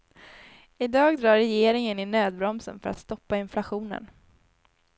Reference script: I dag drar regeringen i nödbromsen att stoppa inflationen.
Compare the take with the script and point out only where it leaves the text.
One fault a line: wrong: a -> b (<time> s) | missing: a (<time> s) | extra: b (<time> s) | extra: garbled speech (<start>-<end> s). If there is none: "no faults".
extra: för (2.8 s)